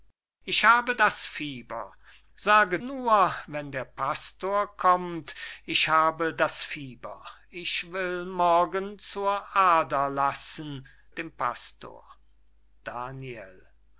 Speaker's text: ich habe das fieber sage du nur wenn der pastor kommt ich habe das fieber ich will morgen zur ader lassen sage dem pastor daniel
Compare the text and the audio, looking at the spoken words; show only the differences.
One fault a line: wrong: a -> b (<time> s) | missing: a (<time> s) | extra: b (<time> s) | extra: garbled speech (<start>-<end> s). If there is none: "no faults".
missing: du (2.8 s)
missing: sage (10.9 s)